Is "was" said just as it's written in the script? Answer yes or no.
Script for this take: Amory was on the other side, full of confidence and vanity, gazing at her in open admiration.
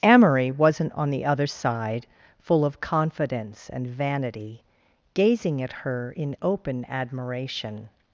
no